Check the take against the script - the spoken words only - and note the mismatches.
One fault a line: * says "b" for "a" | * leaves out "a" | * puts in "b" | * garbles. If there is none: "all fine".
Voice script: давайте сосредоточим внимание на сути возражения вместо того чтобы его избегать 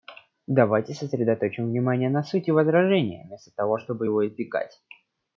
all fine